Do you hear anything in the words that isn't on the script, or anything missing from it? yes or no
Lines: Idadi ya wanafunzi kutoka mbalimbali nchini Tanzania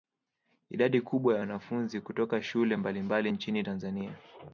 yes